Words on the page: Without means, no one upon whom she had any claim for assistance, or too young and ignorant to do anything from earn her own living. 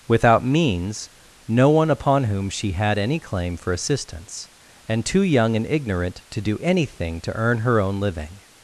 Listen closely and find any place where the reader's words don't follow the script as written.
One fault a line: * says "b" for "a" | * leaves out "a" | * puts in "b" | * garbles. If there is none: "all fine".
* says "and" for "or"
* says "to" for "from"